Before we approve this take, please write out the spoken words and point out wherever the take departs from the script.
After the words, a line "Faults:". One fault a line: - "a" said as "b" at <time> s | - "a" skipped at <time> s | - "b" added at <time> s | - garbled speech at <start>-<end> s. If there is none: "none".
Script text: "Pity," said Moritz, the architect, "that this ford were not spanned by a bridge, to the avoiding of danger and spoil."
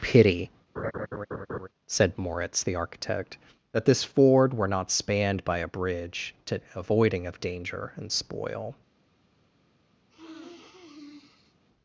"Pity," said Moritz, the architect, "that this ford were not spanned by a bridge, to avoiding of danger and spoil."
Faults:
- "the" skipped at 6.6 s